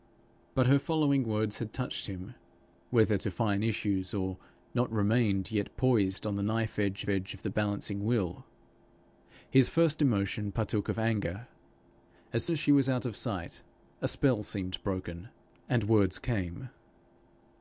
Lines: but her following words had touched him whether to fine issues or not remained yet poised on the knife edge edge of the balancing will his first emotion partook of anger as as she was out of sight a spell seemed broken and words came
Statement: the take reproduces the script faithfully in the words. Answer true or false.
true